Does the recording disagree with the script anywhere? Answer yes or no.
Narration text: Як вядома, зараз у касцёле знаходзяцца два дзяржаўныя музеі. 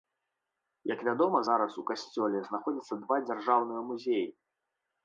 no